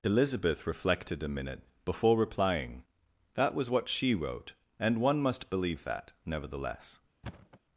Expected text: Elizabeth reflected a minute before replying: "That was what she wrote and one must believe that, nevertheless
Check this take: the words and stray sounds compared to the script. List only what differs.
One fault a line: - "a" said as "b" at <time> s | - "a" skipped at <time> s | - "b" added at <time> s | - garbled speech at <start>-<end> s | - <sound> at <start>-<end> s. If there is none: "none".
- thud at 7.2-7.6 s